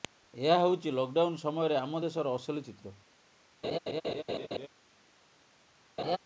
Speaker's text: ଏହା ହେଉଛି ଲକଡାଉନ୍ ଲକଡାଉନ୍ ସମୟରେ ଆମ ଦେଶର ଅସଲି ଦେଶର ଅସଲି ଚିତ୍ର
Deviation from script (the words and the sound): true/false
true